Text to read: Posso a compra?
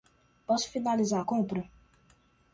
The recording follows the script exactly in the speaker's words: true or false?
false